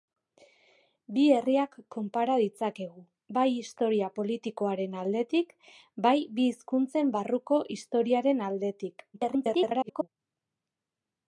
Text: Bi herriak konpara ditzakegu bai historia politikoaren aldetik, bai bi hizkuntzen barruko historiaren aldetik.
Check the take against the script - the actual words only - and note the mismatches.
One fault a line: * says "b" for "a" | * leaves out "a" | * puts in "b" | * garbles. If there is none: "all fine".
* garbles